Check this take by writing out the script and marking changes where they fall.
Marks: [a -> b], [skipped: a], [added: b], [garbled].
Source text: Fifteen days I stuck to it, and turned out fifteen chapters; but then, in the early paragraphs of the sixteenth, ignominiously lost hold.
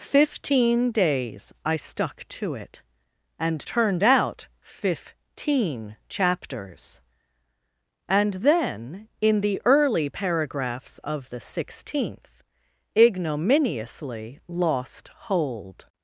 Fifteen days I stuck to it, and turned out fifteen chapters; [but -> and] then, in the early paragraphs of the sixteenth, ignominiously lost hold.